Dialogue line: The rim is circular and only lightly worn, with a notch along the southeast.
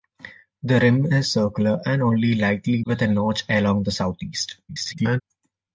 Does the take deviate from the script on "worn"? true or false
true